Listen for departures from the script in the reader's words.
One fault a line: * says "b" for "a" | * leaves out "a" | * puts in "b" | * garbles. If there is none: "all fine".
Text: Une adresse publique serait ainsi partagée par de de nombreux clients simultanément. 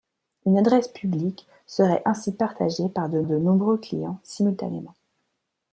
all fine